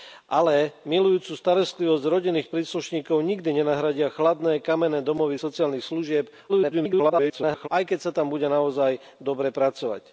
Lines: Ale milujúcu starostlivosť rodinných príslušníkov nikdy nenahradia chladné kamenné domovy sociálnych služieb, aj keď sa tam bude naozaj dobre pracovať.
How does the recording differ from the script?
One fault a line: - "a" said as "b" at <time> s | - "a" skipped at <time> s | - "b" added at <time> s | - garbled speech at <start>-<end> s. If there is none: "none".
- garbled speech at 6.5-7.7 s